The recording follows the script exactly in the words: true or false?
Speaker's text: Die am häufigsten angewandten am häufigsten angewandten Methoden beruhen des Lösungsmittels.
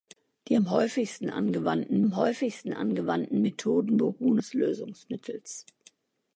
true